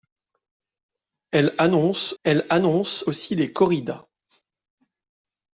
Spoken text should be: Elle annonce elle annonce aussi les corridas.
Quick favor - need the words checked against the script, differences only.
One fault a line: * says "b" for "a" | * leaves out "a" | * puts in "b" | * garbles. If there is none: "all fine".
all fine